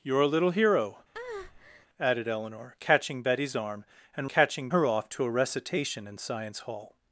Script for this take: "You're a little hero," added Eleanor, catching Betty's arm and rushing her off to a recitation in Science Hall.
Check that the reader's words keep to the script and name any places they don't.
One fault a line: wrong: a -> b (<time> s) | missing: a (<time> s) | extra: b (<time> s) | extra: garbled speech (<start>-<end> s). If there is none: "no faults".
wrong: rushing -> catching (4.3 s)